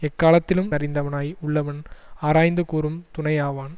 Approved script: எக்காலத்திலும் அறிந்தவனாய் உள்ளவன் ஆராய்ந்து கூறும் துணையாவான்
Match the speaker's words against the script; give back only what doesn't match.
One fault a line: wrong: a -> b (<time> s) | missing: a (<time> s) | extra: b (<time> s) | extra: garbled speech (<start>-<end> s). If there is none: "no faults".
no faults